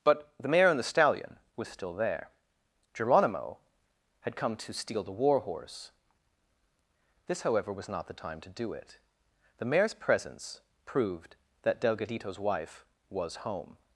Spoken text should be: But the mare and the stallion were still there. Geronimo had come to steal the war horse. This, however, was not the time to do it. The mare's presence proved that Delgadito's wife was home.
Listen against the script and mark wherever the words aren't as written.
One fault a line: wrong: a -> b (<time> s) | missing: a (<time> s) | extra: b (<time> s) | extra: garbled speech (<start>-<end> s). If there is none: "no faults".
wrong: were -> was (1.6 s)